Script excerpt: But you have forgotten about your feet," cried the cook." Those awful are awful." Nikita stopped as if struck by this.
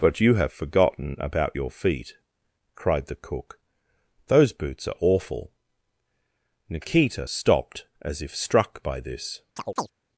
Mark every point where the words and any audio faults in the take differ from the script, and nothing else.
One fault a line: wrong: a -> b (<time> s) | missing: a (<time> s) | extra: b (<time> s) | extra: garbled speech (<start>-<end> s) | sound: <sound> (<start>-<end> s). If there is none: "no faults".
wrong: awful -> boots (4.5 s)
sound: chirp (9.6-9.9 s)